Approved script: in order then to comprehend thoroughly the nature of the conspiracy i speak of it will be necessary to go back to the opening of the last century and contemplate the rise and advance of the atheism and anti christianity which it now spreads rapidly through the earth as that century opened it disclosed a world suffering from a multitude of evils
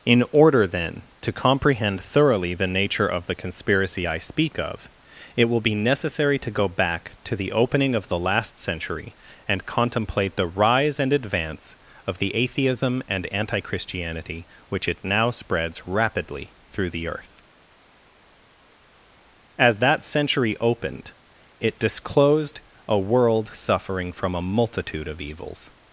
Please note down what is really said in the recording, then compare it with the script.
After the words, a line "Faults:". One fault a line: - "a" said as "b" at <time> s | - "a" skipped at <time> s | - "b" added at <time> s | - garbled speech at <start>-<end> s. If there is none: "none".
in order then to comprehend thoroughly the nature of the conspiracy i speak of it will be necessary to go back to the opening of the last century and contemplate the rise and advance of the atheism and anti christianity which it now spreads rapidly through the earth as that century opened it disclosed a world suffering from a multitude of evils
Faults:
none